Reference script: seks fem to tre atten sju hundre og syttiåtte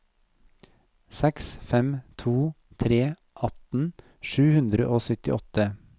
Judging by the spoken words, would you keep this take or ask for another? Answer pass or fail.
pass